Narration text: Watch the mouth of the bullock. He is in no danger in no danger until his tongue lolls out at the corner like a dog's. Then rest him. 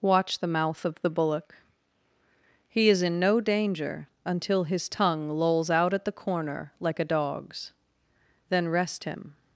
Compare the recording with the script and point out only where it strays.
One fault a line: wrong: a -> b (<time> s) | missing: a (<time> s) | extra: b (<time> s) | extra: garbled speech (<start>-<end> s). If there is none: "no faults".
missing: in no danger (4.1 s)